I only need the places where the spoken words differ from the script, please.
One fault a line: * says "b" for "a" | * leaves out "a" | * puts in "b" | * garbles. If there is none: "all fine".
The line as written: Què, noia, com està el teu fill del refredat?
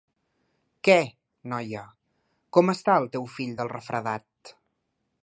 all fine